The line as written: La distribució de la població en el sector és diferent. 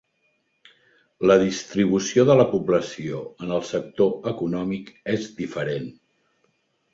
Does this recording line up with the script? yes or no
no